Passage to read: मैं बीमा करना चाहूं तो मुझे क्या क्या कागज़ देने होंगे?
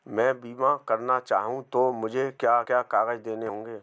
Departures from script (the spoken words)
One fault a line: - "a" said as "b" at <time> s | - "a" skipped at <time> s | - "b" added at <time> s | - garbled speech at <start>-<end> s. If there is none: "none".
none